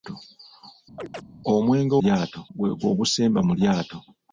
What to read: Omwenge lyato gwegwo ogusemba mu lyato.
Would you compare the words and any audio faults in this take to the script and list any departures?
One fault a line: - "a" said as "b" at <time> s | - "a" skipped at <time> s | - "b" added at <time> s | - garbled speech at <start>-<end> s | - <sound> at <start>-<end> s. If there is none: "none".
- chirp at 1.0-1.2 s